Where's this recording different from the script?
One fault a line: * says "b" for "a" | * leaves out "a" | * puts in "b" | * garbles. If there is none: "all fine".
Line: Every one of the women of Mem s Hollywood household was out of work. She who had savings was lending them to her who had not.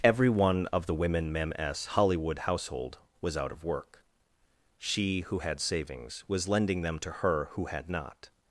* leaves out "of"